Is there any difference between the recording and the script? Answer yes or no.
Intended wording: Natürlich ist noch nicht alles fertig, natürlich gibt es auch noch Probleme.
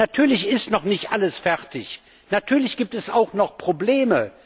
no